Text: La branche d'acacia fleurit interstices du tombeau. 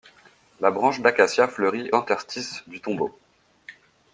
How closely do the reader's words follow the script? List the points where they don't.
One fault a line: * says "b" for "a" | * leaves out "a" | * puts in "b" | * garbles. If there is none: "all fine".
all fine